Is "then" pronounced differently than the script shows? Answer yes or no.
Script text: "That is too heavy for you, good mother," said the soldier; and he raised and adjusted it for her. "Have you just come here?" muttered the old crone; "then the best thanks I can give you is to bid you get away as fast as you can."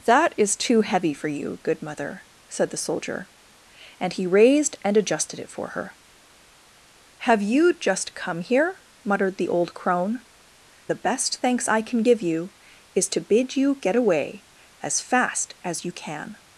yes